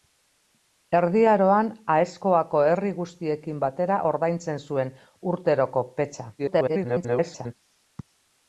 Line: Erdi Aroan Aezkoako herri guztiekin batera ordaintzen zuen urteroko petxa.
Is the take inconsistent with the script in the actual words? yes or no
yes